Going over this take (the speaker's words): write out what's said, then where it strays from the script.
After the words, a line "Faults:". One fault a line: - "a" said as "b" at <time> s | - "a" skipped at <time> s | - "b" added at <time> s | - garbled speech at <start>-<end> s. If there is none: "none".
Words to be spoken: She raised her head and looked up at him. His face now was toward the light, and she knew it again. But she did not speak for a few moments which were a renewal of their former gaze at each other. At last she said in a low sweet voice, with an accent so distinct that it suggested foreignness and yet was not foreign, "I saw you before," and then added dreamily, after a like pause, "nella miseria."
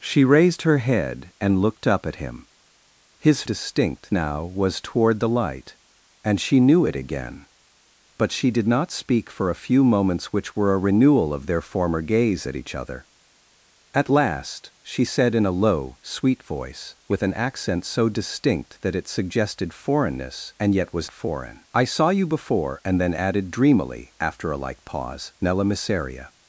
She raised her head and looked up at him. His distinct now was toward the light, and she knew it again. But she did not speak for a few moments which were a renewal of their former gaze at each other. At last she said in a low sweet voice, with an accent so distinct that it suggested foreignness and yet was foreign, "I saw you before," and then added dreamily, after a like pause, "nella miseria."
Faults:
- "face" said as "distinct" at 3.4 s
- "not" skipped at 21.1 s